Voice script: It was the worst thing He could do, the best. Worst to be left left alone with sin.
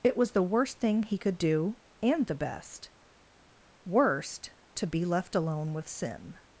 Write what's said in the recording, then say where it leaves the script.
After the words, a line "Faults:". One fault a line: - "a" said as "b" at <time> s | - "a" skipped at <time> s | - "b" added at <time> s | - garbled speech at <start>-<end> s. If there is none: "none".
It was the worst thing He could do, and the best. Worst to be left alone with sin.
Faults:
- "and" added at 2.0 s
- "left" skipped at 5.3 s